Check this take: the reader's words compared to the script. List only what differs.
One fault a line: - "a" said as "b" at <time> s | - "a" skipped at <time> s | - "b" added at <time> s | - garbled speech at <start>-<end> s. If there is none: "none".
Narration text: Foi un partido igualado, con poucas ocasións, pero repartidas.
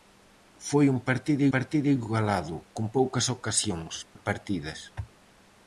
- "partido" added at 1.5 s
- "pero" skipped at 3.9 s